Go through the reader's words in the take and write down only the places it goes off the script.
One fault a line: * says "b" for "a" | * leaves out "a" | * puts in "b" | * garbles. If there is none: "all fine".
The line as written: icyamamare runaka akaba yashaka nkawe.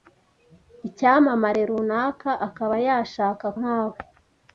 all fine